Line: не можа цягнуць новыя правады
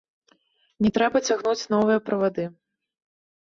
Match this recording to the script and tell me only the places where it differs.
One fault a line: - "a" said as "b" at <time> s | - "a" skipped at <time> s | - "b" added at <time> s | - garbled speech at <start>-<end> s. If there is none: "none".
- "можа" said as "трэба" at 0.9 s